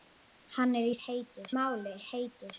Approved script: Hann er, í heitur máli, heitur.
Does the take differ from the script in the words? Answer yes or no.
no